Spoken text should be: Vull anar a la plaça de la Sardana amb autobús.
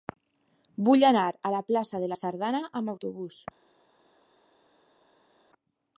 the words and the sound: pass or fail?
pass